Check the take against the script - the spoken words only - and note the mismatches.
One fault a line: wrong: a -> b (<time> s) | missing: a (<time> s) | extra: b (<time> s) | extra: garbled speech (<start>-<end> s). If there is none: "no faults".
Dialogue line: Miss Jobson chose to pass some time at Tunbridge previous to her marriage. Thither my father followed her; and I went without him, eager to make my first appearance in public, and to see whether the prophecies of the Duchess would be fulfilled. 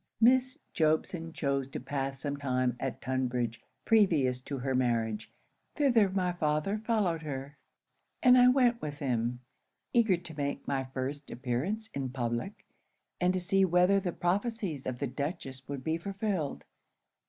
wrong: without -> with (8.8 s)